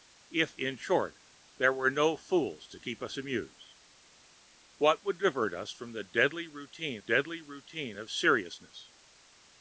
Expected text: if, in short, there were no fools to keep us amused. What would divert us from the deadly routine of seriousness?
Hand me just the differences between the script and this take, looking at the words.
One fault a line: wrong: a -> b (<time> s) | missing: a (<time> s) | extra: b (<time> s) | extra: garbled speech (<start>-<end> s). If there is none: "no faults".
extra: deadly routine (7.0 s)